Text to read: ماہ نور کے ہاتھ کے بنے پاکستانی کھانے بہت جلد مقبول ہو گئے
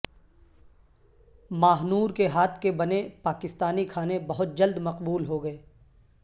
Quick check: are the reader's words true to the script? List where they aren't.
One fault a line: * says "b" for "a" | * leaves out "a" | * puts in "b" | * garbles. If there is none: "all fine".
all fine